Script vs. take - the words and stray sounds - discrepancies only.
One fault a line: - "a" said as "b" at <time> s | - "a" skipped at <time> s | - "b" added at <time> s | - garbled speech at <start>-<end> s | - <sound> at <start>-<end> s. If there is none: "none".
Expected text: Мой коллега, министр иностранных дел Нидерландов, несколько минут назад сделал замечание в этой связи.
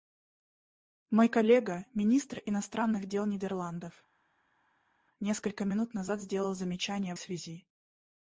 - "этой" skipped at 7.2 s